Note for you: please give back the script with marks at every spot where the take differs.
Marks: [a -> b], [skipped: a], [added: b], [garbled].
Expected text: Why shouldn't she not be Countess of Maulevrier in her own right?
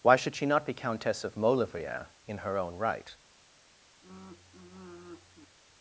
Why [shouldn't -> should] she not be Countess of Maulevrier in her own right?